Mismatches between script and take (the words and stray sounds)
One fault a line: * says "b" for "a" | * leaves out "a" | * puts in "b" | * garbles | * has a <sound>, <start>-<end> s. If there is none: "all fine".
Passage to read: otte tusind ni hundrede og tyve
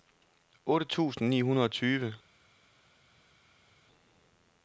all fine